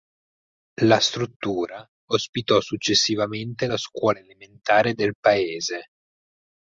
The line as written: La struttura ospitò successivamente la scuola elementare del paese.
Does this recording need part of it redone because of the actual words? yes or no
no